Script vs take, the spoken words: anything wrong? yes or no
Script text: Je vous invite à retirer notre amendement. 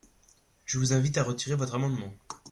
yes